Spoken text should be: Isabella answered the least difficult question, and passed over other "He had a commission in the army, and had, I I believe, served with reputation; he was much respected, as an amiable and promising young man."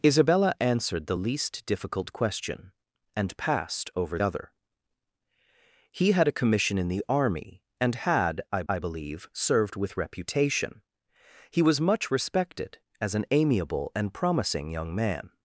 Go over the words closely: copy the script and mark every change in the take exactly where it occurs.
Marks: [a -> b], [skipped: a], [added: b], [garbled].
Isabella answered the least difficult question, and passed over other "He had a commission in the army, and had, I I believe, served with reputation; he was much respected, as an amiable and promising young man."